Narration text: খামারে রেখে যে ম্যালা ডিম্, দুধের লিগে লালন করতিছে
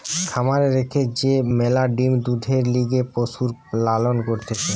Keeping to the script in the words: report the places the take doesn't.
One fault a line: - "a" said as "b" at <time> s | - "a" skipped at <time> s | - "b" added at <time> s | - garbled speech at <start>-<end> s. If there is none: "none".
- "পশুর" added at 3.1 s